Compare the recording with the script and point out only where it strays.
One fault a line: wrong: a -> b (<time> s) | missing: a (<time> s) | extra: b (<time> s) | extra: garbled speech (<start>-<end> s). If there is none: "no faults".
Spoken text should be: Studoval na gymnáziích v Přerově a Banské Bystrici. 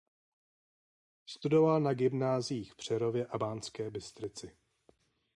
no faults